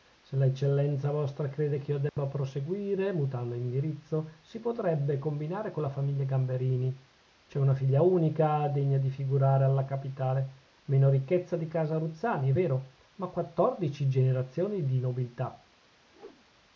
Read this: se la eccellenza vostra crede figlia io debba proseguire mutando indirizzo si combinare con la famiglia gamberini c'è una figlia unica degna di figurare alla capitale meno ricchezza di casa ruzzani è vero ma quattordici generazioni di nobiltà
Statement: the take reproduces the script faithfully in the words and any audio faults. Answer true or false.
false